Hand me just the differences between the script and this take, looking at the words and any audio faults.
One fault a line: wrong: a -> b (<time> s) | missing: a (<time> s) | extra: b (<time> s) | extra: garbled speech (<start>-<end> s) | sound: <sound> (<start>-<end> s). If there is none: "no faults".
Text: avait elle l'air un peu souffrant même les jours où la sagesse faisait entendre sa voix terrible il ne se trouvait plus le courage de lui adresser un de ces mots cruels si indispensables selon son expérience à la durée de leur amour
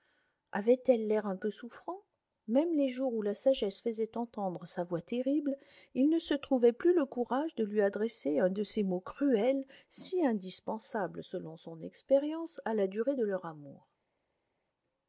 no faults